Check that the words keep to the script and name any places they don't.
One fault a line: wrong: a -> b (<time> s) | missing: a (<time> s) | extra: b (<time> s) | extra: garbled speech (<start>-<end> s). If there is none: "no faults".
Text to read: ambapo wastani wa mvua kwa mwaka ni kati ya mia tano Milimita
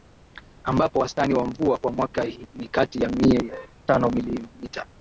no faults